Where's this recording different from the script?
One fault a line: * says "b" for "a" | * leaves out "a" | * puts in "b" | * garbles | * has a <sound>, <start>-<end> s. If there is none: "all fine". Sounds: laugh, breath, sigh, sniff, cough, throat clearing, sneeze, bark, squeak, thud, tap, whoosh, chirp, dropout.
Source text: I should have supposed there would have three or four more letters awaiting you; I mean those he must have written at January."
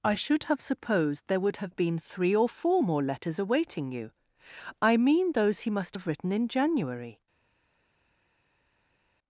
* puts in "been"
* says "in" for "at"